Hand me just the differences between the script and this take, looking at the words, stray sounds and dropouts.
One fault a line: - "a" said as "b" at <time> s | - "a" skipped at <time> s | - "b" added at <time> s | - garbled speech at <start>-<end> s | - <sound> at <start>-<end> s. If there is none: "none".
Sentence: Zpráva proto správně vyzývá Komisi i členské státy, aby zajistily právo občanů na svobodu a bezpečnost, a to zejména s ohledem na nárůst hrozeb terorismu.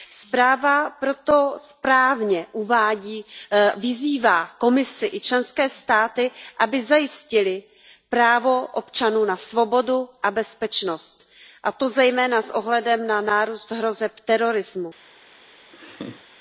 - laugh at 15.7-16.2 s